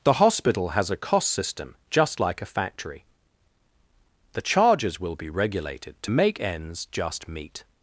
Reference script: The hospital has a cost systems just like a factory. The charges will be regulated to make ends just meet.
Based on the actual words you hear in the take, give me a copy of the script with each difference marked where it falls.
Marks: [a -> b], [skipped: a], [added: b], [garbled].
The hospital has a cost [systems -> system] just like a factory. The charges will be regulated to make ends just meet.